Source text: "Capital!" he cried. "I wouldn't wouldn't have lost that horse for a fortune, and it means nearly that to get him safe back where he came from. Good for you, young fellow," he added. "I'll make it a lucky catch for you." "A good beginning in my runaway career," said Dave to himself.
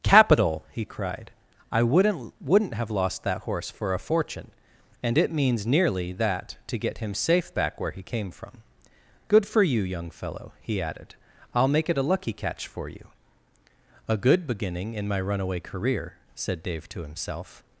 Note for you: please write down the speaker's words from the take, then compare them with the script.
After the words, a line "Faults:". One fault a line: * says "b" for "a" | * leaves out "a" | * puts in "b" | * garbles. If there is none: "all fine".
"Capital!" he cried. "I wouldn't wouldn't have lost that horse for a fortune, and it means nearly that to get him safe back where he came from. Good for you, young fellow," he added. "I'll make it a lucky catch for you." "A good beginning in my runaway career," said Dave to himself.
Faults:
all fine